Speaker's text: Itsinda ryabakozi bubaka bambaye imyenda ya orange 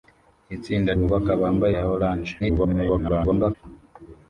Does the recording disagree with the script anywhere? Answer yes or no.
yes